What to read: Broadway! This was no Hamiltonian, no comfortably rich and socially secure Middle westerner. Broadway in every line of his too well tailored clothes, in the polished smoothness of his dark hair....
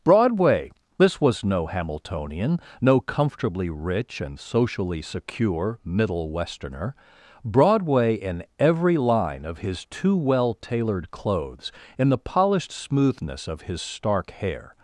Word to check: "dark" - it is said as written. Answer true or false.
false